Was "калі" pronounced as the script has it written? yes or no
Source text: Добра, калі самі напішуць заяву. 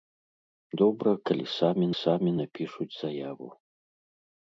yes